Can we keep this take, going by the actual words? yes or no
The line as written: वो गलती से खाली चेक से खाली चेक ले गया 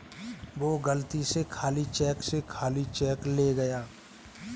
yes